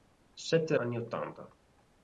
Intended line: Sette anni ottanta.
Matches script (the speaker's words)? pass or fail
pass